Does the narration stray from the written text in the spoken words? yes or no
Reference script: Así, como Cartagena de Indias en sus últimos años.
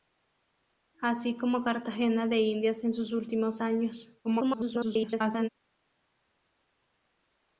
yes